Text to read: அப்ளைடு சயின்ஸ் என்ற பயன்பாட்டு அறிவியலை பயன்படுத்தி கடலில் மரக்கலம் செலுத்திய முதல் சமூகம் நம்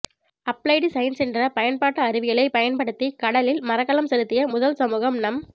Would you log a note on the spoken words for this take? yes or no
no